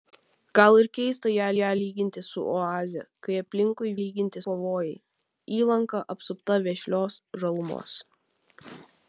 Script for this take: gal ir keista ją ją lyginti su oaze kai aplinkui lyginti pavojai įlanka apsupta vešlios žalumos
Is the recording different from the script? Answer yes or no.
no